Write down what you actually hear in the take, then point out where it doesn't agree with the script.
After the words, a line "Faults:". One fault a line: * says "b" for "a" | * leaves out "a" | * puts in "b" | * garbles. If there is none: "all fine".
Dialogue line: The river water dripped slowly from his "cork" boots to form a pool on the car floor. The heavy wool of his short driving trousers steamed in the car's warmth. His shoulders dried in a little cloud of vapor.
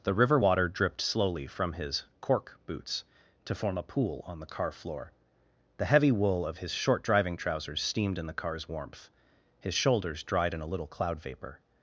The river water dripped slowly from his "cork" boots to form a pool on the car floor. The heavy wool of his short driving trousers steamed in the car's warmth. His shoulders dried in a little cloud vapor.
Faults:
* leaves out "of"